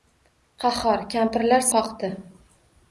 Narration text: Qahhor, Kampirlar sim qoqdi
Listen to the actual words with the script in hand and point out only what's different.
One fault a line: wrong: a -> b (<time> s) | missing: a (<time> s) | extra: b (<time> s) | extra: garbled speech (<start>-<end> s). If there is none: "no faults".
missing: sim (1.7 s)